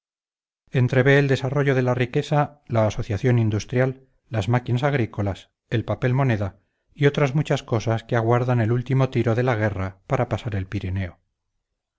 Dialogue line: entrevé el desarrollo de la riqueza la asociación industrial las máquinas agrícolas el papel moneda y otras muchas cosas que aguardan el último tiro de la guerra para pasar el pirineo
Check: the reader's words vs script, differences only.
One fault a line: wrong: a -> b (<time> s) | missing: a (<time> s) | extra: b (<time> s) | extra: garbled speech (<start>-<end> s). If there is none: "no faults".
no faults